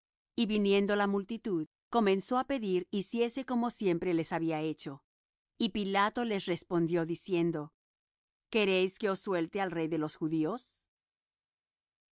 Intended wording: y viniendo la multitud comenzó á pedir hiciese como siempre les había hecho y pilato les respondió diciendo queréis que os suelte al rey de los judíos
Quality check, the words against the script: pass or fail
pass